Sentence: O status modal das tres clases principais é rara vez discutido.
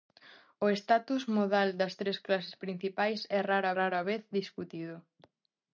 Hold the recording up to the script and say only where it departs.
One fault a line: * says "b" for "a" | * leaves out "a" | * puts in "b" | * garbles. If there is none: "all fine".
* puts in "rara"